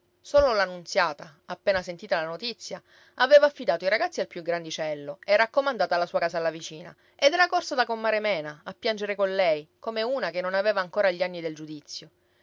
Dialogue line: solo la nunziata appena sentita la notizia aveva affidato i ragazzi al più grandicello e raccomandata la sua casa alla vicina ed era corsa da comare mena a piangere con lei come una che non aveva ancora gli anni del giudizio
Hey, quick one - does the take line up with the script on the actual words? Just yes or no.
yes